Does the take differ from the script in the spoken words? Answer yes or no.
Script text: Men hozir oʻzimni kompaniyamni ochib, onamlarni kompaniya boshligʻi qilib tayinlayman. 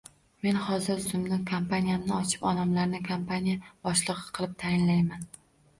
no